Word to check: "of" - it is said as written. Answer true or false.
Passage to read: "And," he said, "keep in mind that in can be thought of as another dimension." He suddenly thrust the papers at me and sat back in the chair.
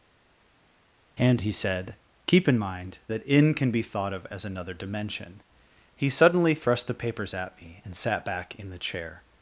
true